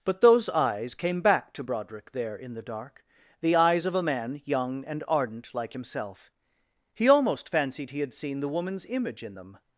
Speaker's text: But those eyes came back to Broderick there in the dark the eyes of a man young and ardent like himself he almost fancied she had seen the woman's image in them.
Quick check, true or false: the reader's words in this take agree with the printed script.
false